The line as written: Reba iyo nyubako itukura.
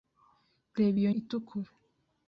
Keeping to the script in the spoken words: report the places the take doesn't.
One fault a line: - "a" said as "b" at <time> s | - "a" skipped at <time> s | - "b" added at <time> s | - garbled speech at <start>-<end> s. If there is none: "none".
- "nyubako" skipped at 1.1 s